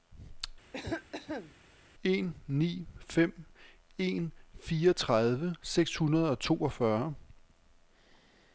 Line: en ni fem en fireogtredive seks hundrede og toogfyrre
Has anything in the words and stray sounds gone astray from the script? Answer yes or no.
yes